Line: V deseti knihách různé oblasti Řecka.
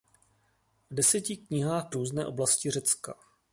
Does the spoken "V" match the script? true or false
true